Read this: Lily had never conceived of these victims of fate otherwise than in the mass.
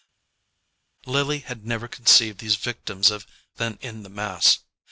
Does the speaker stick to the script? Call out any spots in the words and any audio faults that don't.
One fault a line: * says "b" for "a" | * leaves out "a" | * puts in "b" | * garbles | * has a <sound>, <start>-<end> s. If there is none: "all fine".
* leaves out "of"
* leaves out "fate otherwise"